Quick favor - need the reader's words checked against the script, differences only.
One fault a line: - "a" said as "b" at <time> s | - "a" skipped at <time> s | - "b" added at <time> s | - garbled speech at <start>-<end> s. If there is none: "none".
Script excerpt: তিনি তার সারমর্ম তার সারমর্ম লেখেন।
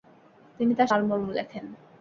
- "তার সারমর্ম" skipped at 1.3 s